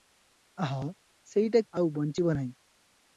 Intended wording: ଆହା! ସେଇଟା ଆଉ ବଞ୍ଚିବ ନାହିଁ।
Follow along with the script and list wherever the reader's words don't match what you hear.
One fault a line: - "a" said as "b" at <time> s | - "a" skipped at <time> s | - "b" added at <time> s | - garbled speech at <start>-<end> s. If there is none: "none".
none